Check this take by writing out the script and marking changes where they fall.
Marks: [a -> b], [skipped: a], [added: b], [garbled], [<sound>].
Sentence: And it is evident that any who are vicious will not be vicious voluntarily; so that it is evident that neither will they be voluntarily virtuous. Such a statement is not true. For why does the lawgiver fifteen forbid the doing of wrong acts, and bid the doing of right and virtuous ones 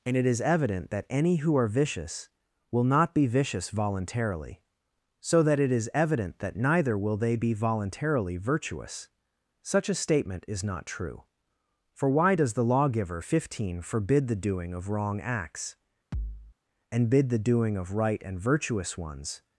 And it is evident that any who are vicious will not be vicious voluntarily; so that it is evident that neither will they be voluntarily virtuous. Such a statement is not true. For why does the lawgiver fifteen forbid the doing of wrong acts, [thud] and bid the doing of right and virtuous ones